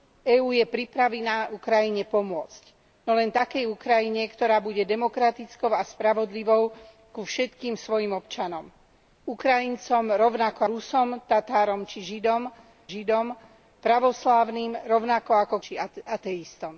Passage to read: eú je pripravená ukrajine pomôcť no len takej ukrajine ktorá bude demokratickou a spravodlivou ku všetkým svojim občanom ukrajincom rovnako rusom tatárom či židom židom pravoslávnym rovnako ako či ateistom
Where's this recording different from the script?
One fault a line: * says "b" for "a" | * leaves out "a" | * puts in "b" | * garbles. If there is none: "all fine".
all fine